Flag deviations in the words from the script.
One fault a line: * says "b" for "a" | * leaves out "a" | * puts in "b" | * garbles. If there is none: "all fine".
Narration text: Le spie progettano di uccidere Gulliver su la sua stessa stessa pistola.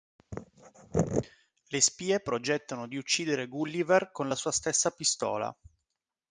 * says "con" for "su"
* leaves out "stessa"